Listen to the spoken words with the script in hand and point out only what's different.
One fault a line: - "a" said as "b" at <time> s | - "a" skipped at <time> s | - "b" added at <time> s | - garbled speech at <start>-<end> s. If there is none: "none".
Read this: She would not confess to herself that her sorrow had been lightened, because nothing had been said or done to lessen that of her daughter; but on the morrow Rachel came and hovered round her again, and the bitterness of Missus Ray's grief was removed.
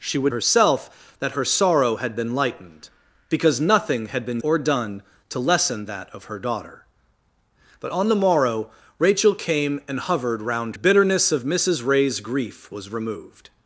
- "not confess to" skipped at 0.3 s
- "said" skipped at 4.4 s
- "her again and" skipped at 10.8 s